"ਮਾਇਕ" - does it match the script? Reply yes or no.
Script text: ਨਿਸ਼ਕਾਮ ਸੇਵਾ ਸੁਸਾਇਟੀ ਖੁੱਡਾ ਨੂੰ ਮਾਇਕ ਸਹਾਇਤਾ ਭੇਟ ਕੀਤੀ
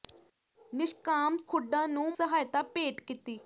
no